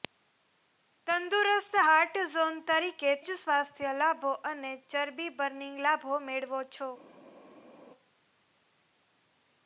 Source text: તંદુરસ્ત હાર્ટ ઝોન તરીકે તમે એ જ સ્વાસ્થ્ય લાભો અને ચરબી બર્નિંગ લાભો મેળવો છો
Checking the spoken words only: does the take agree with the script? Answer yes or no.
no